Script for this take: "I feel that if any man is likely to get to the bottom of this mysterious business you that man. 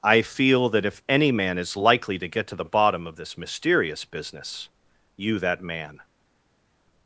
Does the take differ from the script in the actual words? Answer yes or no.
no